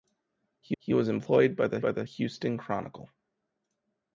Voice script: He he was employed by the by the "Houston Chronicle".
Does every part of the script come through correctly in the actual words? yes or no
yes